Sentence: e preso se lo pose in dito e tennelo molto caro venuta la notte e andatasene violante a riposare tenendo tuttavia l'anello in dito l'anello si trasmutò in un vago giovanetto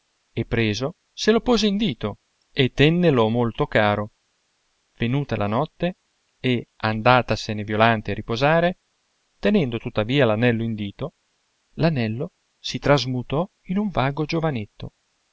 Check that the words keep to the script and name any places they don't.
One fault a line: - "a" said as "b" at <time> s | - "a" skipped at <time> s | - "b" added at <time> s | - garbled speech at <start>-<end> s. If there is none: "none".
none